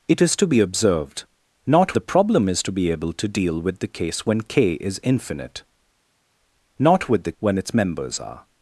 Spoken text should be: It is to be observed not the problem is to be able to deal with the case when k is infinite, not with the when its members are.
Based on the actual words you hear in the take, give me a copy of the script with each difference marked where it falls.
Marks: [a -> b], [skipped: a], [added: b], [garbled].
It is to be observed not the problem is to be able to deal with the case when k is infinite, not with the when its members are.